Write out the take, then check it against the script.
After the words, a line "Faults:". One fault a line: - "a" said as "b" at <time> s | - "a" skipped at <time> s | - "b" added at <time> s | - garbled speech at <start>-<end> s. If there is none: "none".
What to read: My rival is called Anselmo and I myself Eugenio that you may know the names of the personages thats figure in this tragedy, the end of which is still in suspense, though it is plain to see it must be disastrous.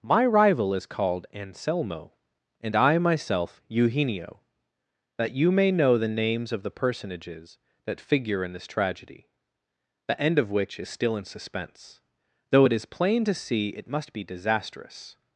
My rival is called Anselmo and I myself Eugenio that you may know the names of the personages that figure in this tragedy, the end of which is still in suspense, though it is plain to see it must be disastrous.
Faults:
- "thats" said as "that" at 7.8 s